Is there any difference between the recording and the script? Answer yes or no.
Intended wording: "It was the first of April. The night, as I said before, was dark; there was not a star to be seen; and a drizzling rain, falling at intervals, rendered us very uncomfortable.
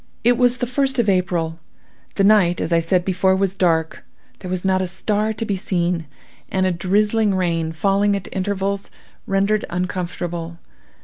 yes